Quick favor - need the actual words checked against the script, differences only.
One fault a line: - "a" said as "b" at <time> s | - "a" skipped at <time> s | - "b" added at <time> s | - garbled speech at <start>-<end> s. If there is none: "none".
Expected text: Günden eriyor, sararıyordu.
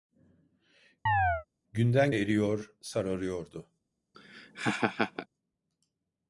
none